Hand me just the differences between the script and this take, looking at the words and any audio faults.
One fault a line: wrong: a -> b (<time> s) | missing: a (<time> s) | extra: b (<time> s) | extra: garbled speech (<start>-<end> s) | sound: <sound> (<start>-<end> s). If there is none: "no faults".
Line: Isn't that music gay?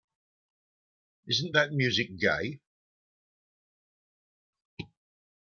no faults